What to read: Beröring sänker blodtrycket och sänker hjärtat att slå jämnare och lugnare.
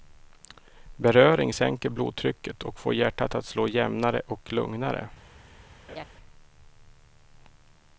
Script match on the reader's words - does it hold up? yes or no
no